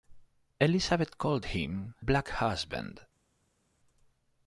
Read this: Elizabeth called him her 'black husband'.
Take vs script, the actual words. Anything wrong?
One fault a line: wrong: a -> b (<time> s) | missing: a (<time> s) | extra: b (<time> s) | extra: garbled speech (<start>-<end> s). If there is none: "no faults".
missing: her (1.9 s)